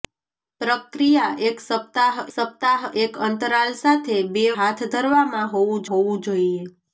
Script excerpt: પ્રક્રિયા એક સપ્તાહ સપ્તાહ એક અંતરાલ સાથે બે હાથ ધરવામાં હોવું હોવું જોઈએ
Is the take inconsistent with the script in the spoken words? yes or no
no